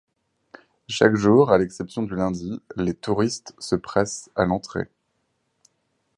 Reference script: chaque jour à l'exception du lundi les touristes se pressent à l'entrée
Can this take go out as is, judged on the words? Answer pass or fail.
pass